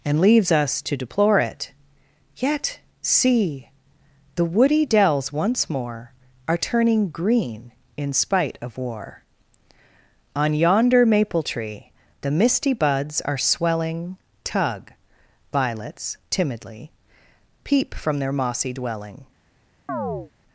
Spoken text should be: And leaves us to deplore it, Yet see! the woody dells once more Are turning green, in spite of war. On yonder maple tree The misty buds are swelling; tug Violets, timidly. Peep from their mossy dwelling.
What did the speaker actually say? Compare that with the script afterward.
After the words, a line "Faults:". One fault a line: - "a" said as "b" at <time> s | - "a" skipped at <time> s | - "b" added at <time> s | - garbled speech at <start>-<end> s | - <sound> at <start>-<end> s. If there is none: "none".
And leaves us to deplore it, Yet see! the woody dells once more Are turning green, in spite of war. On yonder maple tree The misty buds are swelling; tug Violets, timidly. Peep from their mossy dwelling.
Faults:
- chirp at 19.9-20.3 s